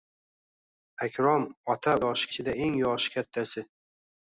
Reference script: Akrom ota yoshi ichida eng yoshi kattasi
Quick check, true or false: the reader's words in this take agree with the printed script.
true